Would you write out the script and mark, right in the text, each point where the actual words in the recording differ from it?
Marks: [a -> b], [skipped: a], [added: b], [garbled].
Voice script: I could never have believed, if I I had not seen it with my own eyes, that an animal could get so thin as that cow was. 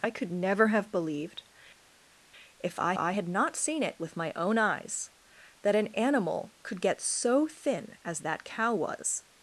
I could never have believed, if I I had not seen it with my own eyes, that an animal could get so thin as that cow was.